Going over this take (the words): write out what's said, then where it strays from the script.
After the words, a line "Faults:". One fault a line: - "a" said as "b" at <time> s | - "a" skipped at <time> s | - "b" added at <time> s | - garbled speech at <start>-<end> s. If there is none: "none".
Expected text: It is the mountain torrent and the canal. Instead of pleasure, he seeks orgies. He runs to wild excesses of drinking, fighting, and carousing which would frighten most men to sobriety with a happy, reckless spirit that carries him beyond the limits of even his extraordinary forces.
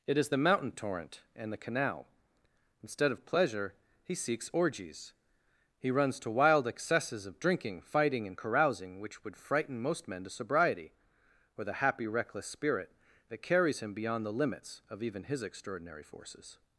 It is the mountain torrent and the canal. Instead of pleasure, he seeks orgies. He runs to wild excesses of drinking, fighting, and carousing which would frighten most men to sobriety or the happy, reckless spirit that carries him beyond the limits of even his extraordinary forces.
Faults:
- "with a" said as "or the" at 11.6 s